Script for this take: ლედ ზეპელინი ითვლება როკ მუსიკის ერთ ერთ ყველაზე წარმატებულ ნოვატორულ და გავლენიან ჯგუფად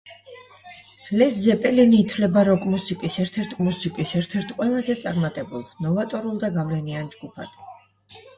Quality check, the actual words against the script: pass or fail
fail